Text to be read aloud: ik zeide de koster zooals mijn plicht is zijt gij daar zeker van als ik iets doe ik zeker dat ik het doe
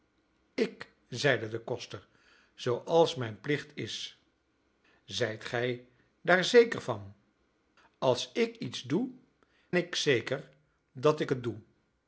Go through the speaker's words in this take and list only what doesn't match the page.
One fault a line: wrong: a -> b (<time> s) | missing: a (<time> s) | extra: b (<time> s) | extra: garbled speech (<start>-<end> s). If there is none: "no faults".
no faults